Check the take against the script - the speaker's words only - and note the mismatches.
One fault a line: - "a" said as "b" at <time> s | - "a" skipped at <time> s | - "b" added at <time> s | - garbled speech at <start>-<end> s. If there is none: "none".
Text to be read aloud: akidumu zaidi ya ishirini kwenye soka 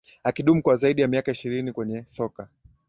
- "kwa" added at 0.6 s
- "miaka" added at 1.1 s